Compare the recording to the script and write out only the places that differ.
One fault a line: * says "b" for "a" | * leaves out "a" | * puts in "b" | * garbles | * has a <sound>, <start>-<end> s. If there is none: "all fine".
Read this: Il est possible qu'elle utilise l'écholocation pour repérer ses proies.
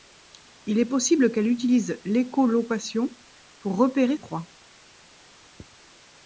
* leaves out "ses"